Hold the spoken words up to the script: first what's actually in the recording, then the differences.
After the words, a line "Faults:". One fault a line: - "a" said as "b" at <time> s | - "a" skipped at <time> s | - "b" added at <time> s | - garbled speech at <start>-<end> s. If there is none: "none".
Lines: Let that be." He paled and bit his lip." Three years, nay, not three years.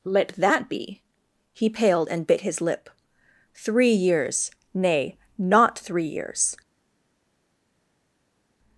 Let that be." He paled and bit his lip." Three years, nay, not three years.
Faults:
none